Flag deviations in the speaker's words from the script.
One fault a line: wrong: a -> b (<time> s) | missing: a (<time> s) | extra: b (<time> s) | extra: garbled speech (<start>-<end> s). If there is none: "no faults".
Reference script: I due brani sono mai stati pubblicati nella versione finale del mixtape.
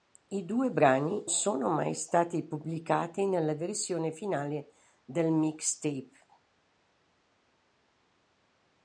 no faults